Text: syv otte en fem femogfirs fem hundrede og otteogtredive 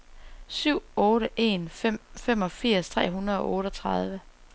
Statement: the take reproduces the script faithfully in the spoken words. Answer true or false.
false